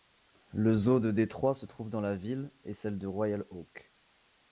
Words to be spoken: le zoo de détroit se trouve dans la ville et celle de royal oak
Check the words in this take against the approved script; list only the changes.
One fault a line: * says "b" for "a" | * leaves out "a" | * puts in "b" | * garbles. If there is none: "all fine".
all fine